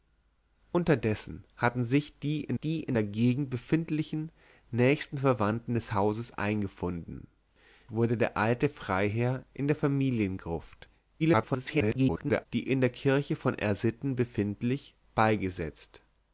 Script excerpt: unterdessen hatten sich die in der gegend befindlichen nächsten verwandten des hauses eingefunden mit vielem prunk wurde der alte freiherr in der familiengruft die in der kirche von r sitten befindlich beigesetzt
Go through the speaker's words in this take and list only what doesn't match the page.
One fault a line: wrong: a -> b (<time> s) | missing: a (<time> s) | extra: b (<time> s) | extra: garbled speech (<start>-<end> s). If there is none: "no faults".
extra: die in (2.6 s)
missing: mit vielem prunk (7.3 s)
extra: garbled speech (11.2-12.5 s)